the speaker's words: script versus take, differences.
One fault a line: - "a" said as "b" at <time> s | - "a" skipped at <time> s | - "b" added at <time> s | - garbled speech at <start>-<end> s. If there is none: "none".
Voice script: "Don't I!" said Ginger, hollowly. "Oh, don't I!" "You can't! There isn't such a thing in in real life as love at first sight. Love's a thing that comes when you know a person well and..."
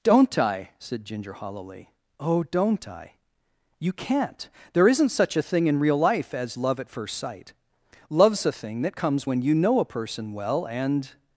- "in" skipped at 5.8 s